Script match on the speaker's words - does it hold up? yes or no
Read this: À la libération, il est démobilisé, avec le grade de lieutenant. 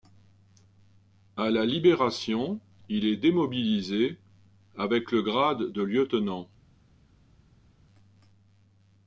yes